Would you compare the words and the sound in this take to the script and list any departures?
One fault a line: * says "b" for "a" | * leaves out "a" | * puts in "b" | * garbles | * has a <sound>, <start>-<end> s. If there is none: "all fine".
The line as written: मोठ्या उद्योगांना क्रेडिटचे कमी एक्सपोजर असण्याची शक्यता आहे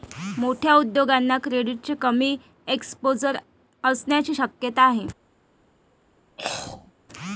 * has a throat clearing, 6.4-6.9 s